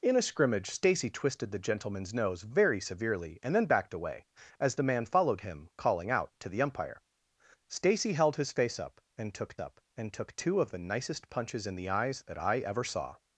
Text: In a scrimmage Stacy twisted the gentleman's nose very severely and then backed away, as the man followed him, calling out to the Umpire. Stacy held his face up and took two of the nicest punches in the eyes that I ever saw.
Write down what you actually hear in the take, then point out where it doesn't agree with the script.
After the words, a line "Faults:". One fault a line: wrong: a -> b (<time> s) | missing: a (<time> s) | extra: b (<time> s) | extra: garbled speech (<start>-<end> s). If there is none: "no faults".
In a scrimmage Stacy twisted the gentleman's nose very severely and then backed away, as the man followed him, calling out to the Umpire. Stacy held his face up and took up and took two of the nicest punches in the eyes that I ever saw.
Faults:
extra: up and took (9.6 s)